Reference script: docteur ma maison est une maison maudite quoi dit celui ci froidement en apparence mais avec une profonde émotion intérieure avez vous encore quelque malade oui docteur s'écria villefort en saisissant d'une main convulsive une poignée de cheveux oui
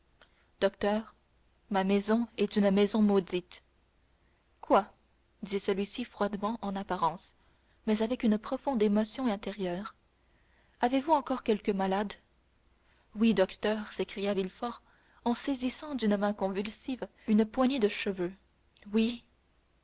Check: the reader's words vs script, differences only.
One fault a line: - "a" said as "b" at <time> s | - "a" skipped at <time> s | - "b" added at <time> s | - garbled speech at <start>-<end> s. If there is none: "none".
none